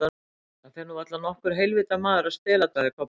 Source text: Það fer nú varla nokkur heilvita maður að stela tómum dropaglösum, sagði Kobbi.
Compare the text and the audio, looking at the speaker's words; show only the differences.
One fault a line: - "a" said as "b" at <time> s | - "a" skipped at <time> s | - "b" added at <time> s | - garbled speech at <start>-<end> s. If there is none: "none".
- "tómum dropaglösum" skipped at 2.7 s